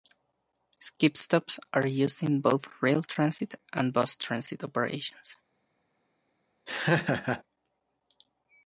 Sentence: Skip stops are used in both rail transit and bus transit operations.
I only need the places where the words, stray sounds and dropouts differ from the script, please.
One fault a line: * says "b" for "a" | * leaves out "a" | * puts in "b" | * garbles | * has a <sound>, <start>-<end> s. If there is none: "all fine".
* has a laugh, 6.7-7.4 s